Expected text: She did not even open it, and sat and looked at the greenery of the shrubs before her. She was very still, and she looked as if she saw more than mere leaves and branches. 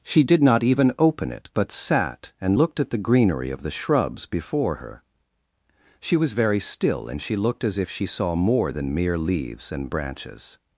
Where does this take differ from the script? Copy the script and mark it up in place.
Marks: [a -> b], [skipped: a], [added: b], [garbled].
She did not even open it, [and -> but] sat and looked at the greenery of the shrubs before her. She was very still, and she looked as if she saw more than mere leaves and branches.